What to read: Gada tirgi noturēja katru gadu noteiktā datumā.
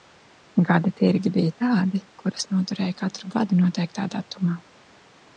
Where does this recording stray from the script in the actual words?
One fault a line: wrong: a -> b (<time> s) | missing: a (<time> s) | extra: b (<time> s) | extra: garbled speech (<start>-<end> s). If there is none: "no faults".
extra: bija tādi kurus (1.3 s)